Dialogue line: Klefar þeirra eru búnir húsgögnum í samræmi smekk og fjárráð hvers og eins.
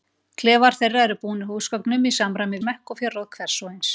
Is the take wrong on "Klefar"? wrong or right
right